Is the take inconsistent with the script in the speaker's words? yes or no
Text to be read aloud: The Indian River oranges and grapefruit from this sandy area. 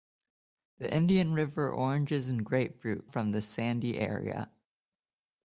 no